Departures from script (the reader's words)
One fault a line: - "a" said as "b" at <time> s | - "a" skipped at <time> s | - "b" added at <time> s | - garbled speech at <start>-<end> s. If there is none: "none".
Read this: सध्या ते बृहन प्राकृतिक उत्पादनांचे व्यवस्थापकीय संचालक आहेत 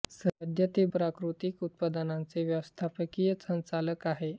- "बृहन" skipped at 0.8 s